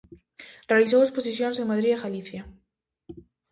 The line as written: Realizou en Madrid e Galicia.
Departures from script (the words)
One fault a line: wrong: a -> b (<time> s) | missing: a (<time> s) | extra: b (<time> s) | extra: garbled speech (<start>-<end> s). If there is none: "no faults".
extra: exposicións (1.0 s)